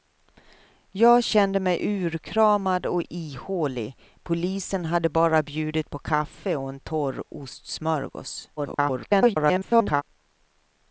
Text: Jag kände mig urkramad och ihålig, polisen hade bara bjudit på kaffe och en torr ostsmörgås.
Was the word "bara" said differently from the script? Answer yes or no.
no